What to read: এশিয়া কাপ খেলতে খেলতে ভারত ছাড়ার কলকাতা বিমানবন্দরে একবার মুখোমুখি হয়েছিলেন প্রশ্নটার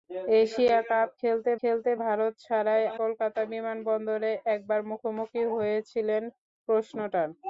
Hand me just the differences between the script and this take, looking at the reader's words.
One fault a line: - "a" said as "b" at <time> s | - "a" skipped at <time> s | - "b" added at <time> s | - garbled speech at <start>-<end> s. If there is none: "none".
none